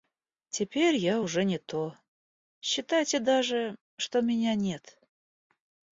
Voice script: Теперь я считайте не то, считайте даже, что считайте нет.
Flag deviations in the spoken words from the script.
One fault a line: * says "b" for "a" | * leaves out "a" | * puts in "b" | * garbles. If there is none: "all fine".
* says "уже" for "считайте"
* says "меня" for "считайте"